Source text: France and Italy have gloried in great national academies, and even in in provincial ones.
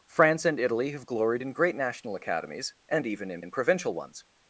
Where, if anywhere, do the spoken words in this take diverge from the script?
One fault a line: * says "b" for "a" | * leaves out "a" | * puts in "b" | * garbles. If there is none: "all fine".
all fine